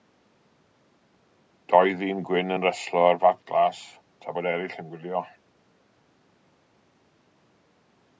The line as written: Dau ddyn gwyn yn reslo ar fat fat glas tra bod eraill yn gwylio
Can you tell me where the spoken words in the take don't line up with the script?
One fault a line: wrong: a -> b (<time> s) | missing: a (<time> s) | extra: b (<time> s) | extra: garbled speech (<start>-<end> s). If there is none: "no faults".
missing: fat (3.4 s)